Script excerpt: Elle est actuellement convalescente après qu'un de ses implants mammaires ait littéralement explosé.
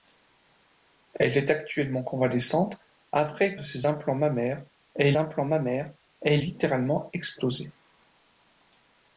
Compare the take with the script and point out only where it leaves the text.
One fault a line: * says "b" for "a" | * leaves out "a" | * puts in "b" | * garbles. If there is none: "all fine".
* leaves out "qu'un"
* puts in "implants mammaires ait"